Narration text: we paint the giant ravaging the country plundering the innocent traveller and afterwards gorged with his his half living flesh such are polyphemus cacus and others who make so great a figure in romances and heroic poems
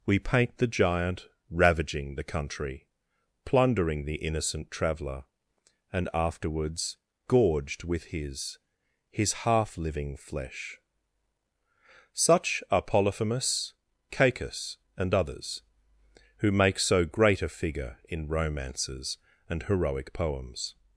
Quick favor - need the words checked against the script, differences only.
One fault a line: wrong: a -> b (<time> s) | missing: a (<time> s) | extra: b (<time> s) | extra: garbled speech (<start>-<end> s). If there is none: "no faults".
no faults